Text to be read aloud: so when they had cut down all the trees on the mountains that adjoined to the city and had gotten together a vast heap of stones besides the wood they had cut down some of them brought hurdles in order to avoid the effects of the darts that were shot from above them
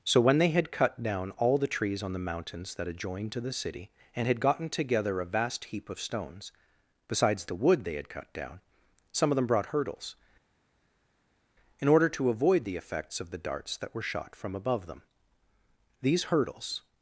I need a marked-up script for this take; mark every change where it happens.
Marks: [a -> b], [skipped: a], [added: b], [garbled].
so when they had cut down all the trees on the mountains that adjoined to the city and had gotten together a vast heap of stones besides the wood they had cut down some of them brought hurdles in order to avoid the effects of the darts that were shot from above them [added: these hurdles]